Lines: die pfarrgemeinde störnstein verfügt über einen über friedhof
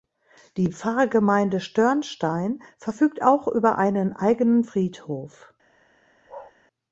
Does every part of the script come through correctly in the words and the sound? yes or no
no